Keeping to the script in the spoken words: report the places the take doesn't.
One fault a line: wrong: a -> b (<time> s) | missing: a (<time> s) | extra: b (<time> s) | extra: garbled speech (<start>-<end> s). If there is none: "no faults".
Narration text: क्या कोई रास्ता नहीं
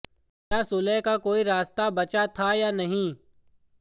extra: सुलह का (0.6 s)
extra: बचा था या (1.9 s)